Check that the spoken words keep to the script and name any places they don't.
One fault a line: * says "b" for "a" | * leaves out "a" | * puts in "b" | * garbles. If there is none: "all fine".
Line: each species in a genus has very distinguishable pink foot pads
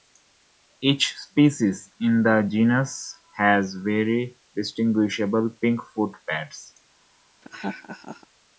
* says "the" for "a"